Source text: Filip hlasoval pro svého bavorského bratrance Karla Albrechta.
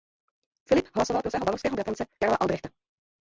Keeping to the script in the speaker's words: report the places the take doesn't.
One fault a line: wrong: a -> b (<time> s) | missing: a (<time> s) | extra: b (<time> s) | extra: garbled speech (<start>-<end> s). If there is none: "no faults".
no faults